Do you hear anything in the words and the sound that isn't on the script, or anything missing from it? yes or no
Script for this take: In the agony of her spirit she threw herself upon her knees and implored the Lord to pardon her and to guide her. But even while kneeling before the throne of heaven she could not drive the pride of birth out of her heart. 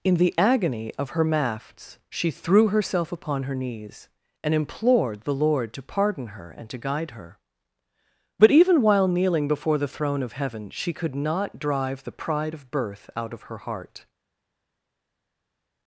yes